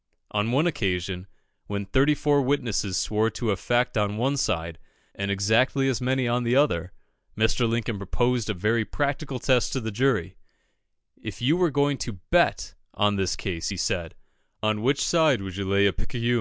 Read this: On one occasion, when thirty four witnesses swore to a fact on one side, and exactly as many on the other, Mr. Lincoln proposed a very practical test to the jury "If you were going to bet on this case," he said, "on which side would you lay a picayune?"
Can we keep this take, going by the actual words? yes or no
yes